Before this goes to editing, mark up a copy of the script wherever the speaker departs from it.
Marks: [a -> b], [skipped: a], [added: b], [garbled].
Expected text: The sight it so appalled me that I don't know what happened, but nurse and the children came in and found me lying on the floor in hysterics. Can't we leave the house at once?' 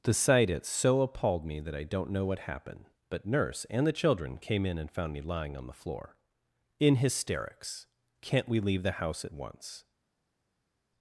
The sight it so appalled me that I don't know what happened, but nurse and the children came in and found me lying on the floor in hysterics. Can't we leave the house at once?'